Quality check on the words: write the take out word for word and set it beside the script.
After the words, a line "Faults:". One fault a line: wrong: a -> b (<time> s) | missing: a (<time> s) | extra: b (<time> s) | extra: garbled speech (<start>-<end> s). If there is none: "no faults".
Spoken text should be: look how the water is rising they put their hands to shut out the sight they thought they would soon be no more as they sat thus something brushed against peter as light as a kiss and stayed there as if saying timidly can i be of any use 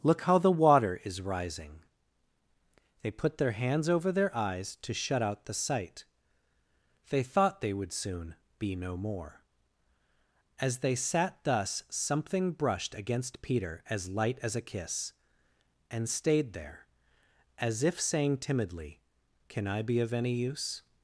look how the water is rising they put their hands over their eyes to shut out the sight they thought they would soon be no more as they sat thus something brushed against peter as light as a kiss and stayed there as if saying timidly can i be of any use
Faults:
extra: over their eyes (3.9 s)